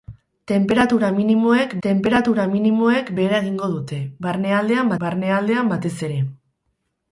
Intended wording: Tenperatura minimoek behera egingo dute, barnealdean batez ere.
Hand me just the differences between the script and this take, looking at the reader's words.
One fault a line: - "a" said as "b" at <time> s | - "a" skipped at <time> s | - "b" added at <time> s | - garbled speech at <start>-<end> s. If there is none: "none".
- "tenperatura minimoek" added at 1.9 s
- "barnealdean" added at 5.1 s